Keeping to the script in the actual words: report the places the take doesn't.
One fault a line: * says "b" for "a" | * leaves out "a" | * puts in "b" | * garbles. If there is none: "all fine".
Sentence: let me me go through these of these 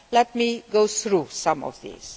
* leaves out "me"
* says "some" for "these"